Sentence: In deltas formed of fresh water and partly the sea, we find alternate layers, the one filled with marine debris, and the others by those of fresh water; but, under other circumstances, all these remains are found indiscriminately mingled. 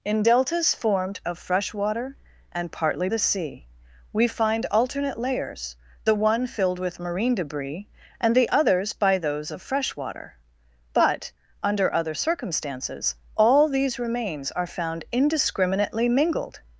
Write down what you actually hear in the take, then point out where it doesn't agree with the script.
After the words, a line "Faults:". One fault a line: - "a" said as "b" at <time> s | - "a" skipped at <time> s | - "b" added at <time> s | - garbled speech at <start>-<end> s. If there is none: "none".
In deltas formed of fresh water and partly the sea, we find alternate layers, the one filled with marine debris, and the others by those of fresh water; but, under other circumstances, all these remains are found indiscriminately mingled.
Faults:
none